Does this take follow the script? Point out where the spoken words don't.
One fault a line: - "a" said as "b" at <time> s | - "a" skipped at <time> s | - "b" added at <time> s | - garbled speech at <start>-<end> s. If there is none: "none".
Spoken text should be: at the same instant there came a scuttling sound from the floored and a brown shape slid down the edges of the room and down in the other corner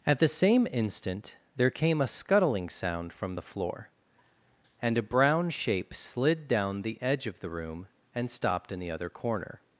- "floored" said as "floor" at 3.4 s
- "edges" said as "edge" at 7.0 s
- "down" said as "stopped" at 8.3 s